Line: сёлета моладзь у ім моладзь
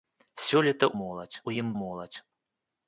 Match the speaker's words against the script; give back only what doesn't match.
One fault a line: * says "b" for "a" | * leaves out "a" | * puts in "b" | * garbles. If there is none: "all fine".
all fine